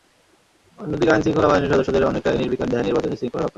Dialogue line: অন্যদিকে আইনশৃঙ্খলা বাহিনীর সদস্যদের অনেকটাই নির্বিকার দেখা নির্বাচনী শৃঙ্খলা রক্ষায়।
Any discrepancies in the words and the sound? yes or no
no